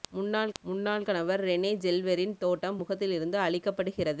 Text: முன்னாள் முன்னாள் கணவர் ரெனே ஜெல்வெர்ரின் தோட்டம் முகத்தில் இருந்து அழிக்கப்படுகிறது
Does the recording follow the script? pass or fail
pass